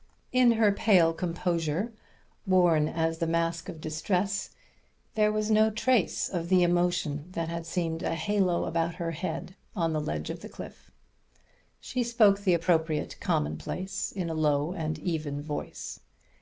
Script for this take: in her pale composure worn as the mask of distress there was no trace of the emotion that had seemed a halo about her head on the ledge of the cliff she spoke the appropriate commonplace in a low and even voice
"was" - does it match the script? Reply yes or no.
yes